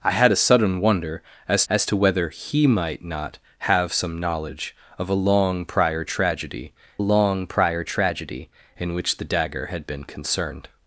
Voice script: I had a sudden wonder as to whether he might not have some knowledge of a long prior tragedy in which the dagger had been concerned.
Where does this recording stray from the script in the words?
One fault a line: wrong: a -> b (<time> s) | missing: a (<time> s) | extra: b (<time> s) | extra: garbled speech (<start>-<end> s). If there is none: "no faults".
extra: as (1.7 s)
extra: long prior tragedy (7.0 s)